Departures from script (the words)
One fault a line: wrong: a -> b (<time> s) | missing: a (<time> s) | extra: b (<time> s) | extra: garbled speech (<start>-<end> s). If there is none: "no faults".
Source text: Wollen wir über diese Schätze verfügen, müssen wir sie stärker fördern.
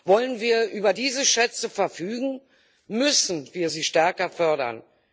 no faults